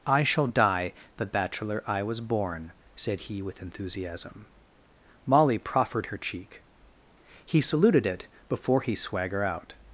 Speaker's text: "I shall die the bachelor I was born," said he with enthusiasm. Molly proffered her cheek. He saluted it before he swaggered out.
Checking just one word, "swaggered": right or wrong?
wrong